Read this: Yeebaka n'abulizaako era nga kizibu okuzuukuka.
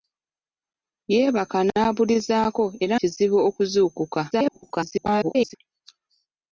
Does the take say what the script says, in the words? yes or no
no